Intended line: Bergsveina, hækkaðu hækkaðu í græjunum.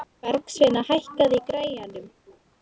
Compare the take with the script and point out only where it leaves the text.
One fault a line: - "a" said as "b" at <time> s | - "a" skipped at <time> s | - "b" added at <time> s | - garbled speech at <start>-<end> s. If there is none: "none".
- "hækkaðu" skipped at 1.4 s